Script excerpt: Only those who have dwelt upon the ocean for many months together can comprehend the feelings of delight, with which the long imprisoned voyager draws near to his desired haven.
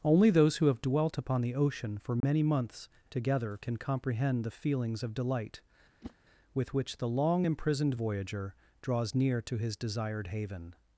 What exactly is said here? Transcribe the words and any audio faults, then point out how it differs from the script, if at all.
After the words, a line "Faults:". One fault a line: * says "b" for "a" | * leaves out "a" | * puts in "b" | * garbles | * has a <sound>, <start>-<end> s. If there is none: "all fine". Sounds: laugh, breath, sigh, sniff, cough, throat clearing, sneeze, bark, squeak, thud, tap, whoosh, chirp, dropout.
Only those who have dwelt upon the ocean for many months together can comprehend the feelings of delight, with which the long imprisoned voyager draws near to his desired haven.
Faults:
* has a dropout, 2.2-2.2 s
* has a whoosh, 6.0-6.1 s